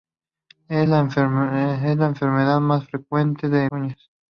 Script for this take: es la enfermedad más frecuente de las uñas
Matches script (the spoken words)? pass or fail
fail